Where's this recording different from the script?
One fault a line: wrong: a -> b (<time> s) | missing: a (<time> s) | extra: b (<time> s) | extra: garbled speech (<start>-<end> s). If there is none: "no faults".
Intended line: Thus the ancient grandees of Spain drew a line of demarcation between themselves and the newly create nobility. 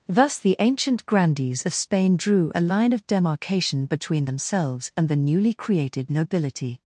wrong: create -> created (5.5 s)